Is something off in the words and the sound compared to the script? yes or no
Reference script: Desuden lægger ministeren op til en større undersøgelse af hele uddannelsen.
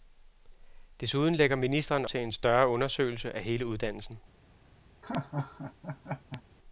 yes